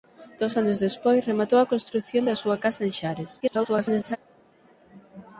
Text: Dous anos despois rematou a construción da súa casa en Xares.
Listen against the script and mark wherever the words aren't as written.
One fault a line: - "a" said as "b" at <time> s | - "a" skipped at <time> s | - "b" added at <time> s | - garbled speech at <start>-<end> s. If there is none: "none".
- garbled speech at 3.4-4.2 s